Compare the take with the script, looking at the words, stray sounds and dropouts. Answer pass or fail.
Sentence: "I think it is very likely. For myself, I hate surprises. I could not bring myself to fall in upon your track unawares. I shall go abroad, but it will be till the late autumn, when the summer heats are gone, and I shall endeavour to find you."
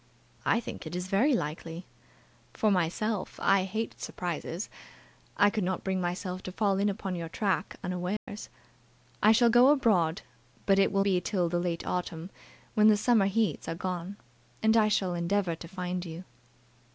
fail